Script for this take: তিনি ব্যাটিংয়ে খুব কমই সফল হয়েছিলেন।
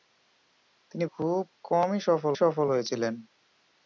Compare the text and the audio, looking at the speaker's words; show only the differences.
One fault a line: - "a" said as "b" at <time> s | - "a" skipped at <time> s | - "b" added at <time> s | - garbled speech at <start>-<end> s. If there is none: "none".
- "ব্যাটিংয়ে" skipped at 1.1 s
- "সফল" added at 2.3 s